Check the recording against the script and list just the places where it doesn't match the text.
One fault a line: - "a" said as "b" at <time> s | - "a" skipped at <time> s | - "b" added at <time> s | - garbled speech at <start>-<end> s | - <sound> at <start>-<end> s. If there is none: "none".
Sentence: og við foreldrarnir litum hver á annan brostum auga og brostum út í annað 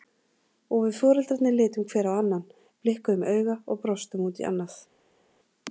- "brostum" said as "blikkuðum" at 2.9 s